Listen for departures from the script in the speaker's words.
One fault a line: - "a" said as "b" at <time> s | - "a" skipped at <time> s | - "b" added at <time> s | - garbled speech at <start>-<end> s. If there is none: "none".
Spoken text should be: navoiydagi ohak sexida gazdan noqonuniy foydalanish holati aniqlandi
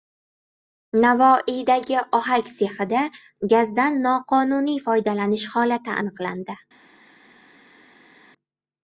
none